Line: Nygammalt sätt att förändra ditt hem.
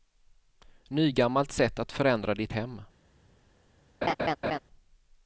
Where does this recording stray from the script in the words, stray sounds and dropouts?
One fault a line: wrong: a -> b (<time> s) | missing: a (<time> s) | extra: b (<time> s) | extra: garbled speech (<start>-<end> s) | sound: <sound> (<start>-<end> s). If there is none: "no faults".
sound: laugh (4.0-4.6 s)